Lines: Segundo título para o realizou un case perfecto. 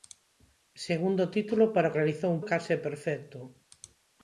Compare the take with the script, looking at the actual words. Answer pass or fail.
pass